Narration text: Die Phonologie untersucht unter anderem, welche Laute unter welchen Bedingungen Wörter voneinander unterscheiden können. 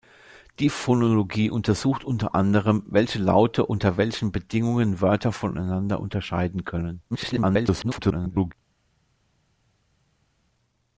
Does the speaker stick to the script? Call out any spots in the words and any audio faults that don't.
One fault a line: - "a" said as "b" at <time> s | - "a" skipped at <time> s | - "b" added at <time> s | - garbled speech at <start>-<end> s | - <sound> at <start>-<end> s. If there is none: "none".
- garbled speech at 7.1-8.5 s